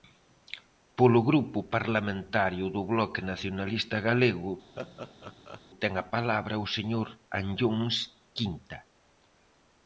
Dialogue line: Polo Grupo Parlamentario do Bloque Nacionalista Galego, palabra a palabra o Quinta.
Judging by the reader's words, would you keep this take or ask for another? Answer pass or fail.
fail